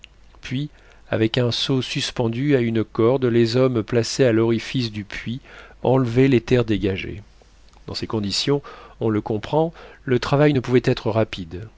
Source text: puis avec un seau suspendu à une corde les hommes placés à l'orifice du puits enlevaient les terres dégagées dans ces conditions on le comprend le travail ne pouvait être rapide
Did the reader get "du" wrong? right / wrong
right